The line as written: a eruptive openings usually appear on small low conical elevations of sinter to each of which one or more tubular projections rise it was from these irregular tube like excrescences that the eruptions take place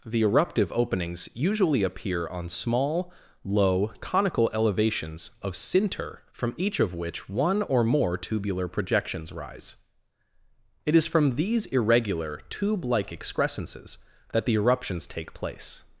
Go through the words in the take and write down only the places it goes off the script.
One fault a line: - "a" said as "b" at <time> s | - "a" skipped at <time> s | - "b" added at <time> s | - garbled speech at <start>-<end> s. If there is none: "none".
- "a" said as "the" at 0.1 s
- "to" said as "from" at 6.3 s
- "was" said as "is" at 10.9 s